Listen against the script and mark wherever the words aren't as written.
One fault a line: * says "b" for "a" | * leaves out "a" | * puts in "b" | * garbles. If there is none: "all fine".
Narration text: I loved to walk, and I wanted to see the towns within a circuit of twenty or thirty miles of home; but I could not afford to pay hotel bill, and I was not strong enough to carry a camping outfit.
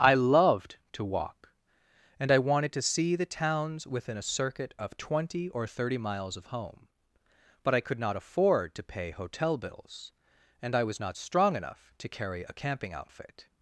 * says "bills" for "bill"